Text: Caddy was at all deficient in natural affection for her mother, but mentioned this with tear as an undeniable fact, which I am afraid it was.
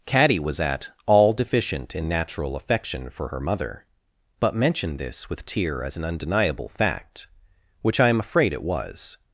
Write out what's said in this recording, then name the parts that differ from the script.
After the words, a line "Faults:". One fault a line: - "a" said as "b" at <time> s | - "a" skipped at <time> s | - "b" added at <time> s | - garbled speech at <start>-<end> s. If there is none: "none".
Caddy was at all deficient in natural affection for her mother, but mentioned this with tear as an undeniable fact, which I am afraid it was.
Faults:
none